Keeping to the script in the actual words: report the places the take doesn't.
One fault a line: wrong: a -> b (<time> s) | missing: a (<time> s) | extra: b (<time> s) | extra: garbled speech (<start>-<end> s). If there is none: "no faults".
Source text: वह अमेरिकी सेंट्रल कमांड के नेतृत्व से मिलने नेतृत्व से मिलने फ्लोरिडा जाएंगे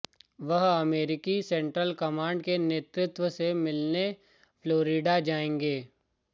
missing: नेतृत्व से मिलने (4.1 s)